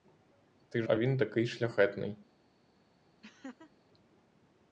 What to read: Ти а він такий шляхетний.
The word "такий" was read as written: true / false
true